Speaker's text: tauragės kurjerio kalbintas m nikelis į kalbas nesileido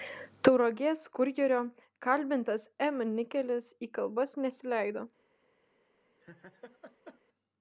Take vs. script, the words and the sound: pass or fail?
fail